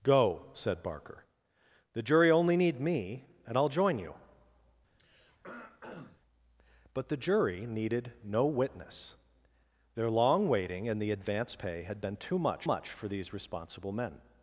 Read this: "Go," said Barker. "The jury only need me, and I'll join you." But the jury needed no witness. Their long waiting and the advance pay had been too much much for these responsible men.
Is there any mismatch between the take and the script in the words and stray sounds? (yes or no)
yes